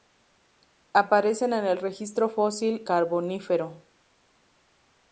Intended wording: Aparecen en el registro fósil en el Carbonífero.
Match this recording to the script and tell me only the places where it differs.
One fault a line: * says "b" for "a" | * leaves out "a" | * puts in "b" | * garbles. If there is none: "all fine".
* leaves out "en el"